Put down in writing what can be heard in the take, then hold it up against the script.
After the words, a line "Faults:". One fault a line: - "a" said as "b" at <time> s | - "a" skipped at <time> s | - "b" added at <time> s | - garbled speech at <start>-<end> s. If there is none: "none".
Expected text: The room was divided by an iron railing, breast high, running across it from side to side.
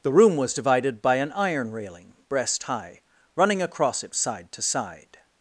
The room was divided by an iron railing, breast high, running across it side to side.
Faults:
- "from" skipped at 4.2 s